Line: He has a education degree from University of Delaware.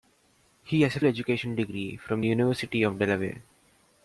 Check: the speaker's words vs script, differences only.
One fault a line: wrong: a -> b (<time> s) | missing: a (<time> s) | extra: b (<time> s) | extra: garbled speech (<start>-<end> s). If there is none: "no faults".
no faults